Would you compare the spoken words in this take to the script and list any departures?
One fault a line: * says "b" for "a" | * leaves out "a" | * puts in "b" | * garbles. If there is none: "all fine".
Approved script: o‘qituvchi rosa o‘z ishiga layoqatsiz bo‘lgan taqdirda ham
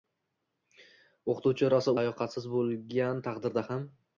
* leaves out "o‘z ishiga"